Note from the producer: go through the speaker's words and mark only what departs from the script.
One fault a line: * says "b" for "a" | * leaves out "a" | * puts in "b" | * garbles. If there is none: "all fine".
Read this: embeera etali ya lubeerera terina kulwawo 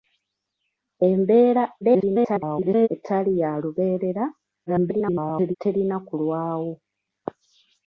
* garbles
* garbles